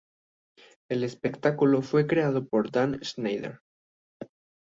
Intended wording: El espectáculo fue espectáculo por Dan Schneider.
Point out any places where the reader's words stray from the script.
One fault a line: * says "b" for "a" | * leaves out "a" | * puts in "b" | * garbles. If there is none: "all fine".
* says "creado" for "espectáculo"